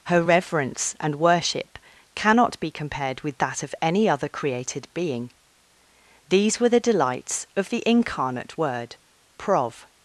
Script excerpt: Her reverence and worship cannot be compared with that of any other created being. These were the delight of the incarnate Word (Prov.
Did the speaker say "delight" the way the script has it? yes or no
no